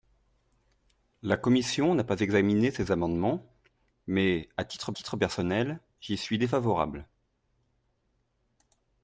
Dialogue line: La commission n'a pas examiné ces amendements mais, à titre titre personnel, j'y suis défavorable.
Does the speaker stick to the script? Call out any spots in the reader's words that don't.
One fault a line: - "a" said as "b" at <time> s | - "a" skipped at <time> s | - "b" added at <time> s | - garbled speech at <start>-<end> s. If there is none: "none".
none